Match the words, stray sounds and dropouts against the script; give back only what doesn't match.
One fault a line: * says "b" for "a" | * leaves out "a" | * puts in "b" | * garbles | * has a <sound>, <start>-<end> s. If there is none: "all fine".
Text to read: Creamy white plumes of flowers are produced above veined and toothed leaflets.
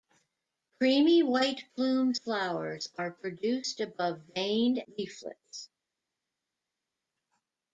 * leaves out "of"
* leaves out "and toothed"